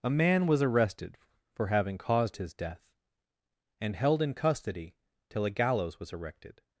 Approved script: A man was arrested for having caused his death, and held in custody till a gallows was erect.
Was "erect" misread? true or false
true